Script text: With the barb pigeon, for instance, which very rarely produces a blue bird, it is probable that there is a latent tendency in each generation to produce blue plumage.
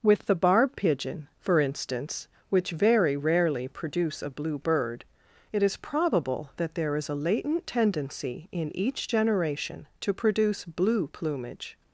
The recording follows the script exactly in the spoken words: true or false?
false